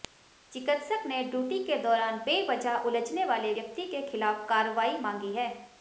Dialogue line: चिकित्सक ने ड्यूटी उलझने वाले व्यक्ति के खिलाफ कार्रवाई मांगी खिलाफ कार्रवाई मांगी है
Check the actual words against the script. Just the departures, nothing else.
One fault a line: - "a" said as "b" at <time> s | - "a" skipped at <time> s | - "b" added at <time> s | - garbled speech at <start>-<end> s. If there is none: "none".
- "के दौरान बेवजह" added at 1.6 s
- "खिलाफ कार्रवाई मांगी" skipped at 5.3 s